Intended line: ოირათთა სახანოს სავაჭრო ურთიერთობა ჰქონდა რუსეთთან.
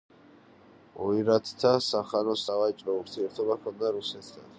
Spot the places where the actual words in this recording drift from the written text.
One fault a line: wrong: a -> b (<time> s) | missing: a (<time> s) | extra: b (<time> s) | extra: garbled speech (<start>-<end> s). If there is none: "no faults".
no faults